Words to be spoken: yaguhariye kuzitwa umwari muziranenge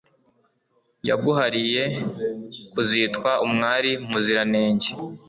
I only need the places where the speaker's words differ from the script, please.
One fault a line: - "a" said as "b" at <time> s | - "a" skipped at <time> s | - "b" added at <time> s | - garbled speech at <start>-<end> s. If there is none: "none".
none